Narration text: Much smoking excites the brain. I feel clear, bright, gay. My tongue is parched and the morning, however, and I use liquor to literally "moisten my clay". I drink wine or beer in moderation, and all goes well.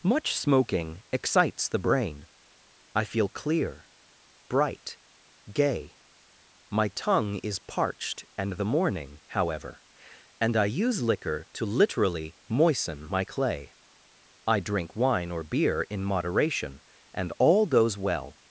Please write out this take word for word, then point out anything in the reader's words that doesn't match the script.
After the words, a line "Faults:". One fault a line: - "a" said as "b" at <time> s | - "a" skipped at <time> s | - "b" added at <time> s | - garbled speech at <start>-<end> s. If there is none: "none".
Much smoking excites the brain. I feel clear, bright, gay. My tongue is parched and the morning, however, and I use liquor to literally "moisten my clay". I drink wine or beer in moderation, and all goes well.
Faults:
none